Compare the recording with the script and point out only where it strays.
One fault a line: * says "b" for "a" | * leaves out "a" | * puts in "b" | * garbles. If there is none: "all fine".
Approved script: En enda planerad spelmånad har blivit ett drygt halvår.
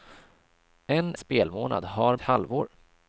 * leaves out "enda planerad"
* leaves out "blivit ett drygt"